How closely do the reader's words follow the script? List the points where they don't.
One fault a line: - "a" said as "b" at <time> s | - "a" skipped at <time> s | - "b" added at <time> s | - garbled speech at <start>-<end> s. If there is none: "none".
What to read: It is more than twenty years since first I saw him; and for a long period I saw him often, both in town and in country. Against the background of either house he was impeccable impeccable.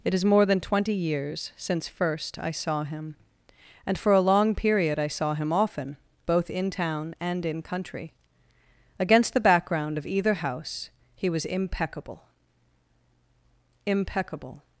none